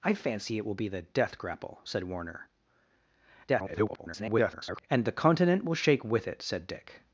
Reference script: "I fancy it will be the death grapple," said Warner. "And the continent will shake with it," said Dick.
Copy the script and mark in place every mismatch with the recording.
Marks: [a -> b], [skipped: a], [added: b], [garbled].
"I fancy it will be the death grapple," said Warner. [garbled] "And the continent will shake with it," said Dick.